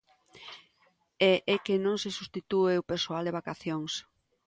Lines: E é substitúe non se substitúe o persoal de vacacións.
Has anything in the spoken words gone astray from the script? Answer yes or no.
yes